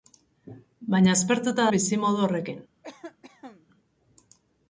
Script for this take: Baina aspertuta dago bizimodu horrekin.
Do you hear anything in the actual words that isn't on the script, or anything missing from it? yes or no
yes